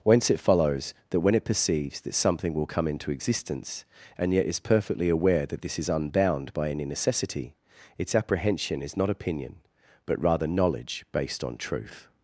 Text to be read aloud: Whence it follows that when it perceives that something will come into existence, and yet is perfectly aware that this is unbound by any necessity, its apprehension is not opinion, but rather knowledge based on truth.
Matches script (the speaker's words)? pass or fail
pass